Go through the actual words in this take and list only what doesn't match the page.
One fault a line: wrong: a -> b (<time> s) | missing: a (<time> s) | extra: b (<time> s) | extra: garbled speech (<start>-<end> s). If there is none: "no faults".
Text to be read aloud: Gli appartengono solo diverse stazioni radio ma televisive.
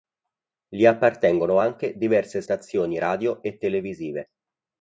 wrong: solo -> anche (1.6 s)
wrong: ma -> e (3.4 s)